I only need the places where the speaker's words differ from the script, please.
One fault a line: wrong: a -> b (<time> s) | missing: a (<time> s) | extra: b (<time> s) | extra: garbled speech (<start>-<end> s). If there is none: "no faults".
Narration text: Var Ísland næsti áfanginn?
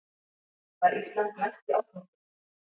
no faults